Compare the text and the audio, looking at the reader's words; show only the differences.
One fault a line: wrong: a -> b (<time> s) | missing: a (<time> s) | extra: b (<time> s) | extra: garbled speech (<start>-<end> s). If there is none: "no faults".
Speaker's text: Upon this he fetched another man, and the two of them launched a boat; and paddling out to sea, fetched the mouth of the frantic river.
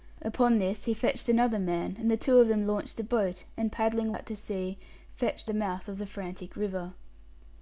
no faults